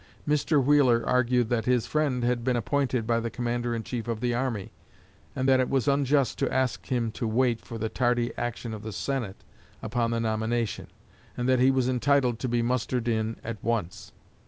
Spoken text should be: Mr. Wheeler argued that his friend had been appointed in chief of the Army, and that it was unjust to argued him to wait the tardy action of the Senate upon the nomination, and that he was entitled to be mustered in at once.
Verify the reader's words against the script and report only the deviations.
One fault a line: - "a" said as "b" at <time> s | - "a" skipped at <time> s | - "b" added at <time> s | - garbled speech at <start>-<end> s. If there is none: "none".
- "by the Commander" added at 3.0 s
- "argued" said as "ask" at 6.5 s
- "for" added at 7.6 s